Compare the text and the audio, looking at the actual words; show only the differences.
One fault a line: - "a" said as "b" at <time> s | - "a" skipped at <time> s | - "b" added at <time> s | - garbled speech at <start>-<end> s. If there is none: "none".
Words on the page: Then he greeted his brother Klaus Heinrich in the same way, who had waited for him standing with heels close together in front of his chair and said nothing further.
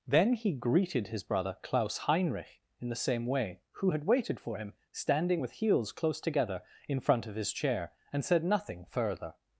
none